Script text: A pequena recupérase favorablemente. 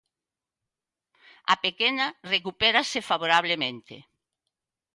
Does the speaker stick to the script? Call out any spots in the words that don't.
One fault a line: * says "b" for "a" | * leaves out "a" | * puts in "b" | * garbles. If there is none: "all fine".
all fine